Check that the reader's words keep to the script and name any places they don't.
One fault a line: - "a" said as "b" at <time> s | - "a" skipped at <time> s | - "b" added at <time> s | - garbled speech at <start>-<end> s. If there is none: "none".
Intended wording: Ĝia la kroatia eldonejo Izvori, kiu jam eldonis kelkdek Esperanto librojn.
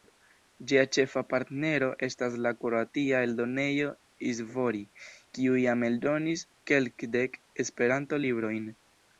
- "ĉefa partnero estas" added at 0.9 s